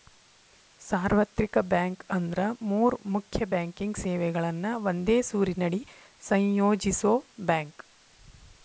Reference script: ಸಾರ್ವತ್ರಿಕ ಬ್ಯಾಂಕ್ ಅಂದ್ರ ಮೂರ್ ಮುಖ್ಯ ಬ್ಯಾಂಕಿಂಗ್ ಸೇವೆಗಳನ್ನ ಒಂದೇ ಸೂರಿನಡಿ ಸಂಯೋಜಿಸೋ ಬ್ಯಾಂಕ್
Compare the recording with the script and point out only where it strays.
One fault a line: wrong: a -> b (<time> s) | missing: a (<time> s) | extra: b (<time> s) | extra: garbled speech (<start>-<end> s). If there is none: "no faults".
no faults